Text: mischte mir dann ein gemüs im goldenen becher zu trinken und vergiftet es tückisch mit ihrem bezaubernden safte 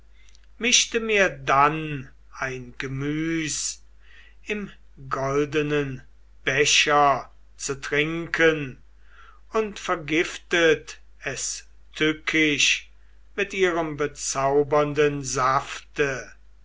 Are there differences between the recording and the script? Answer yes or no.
no